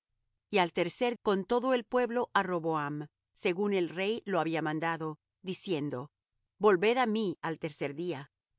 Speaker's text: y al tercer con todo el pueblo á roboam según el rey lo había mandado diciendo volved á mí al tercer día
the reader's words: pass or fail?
pass